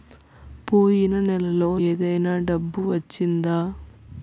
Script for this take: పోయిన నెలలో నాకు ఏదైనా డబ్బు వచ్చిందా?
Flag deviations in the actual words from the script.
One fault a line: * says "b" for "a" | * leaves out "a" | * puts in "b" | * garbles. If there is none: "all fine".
* leaves out "నాకు"